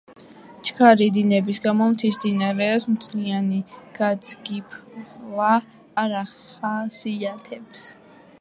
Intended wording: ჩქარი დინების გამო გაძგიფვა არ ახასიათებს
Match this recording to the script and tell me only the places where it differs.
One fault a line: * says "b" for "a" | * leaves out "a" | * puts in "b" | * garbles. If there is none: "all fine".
* puts in "მთის მდინარეებს მთლიანი"